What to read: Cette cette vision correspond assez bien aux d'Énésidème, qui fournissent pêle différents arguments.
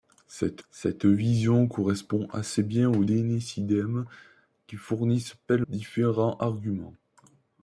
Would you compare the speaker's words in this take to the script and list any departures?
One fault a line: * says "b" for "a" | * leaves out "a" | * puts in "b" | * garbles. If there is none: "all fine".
all fine